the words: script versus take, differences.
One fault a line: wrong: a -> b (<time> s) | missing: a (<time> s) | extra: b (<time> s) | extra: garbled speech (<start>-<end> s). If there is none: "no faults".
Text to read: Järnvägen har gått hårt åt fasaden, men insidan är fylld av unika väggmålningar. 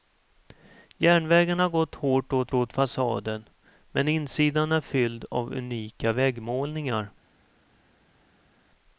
extra: åt (2.5 s)